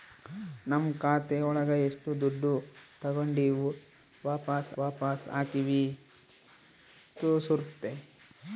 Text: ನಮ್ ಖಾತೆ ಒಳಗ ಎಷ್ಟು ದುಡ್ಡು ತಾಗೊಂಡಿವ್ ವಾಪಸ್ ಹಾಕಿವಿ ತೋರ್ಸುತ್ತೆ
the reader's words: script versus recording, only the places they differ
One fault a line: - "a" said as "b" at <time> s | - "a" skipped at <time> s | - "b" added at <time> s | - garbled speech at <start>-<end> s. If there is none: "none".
- "ವಾಪಸ್" added at 4.8 s